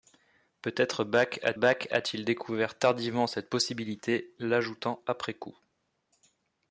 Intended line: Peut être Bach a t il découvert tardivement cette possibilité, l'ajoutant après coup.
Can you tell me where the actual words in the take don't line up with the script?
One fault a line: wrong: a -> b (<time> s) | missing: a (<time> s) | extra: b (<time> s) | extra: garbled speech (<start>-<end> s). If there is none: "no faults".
extra: Bach a (1.5 s)